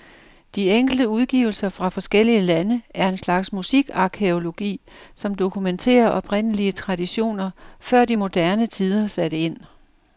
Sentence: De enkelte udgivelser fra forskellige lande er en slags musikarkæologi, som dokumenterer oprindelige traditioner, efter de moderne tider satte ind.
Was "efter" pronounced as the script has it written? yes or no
no